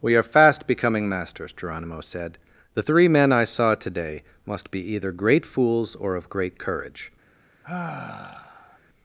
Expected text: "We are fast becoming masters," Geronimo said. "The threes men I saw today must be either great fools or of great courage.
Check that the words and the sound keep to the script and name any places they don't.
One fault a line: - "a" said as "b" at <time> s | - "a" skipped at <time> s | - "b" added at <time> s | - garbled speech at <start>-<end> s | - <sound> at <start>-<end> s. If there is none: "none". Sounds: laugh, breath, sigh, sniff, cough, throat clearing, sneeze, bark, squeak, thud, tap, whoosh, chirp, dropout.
- "threes" said as "three" at 2.8 s
- sigh at 7.6-8.8 s